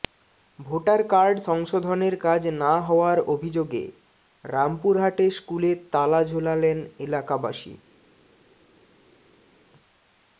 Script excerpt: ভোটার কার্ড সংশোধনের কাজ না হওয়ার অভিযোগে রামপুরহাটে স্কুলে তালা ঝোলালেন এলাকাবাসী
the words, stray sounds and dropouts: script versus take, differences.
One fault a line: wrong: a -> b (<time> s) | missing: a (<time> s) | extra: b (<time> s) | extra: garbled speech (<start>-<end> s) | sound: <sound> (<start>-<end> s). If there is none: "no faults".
no faults